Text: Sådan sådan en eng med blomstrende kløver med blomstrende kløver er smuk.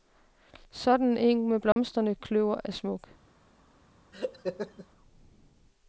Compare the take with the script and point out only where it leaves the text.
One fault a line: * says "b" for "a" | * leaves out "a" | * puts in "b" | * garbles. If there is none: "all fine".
* leaves out "sådan"
* leaves out "med blomstrende kløver"